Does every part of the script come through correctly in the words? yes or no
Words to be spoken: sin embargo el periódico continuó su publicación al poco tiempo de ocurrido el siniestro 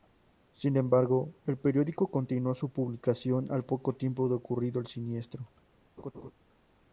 yes